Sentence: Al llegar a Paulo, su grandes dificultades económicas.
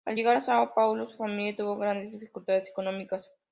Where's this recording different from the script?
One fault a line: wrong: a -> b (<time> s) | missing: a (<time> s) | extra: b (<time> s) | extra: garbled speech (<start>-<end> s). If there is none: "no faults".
extra: São (0.4 s)
extra: familia tuvo (1.2 s)